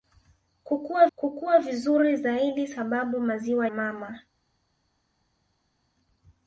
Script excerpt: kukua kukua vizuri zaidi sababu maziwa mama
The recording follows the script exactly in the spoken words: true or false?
true